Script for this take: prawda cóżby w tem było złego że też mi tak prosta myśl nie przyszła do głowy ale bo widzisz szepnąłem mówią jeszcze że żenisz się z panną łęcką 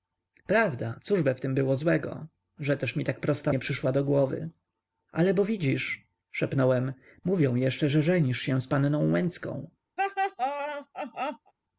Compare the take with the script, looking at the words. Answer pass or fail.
fail